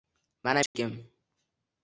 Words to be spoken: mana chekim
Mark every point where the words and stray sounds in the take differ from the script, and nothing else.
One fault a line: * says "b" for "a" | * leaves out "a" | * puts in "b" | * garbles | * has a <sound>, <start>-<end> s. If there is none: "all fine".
* has a dropout, 0.7-0.7 s